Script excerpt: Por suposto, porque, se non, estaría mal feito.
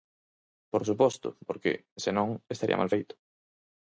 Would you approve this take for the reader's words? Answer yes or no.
yes